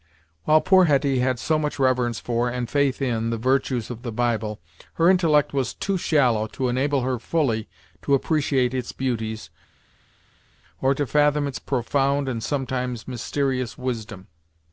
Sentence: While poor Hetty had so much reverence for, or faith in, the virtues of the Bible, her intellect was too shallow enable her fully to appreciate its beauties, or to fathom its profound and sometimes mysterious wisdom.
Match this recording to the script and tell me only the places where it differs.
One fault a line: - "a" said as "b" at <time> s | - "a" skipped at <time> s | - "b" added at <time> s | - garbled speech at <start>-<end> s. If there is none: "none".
- "or" said as "and" at 2.5 s
- "to" added at 6.5 s